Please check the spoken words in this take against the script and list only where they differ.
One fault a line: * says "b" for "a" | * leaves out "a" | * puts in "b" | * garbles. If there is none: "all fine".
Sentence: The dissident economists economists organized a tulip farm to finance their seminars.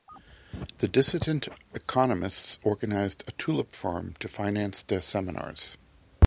* leaves out "economists"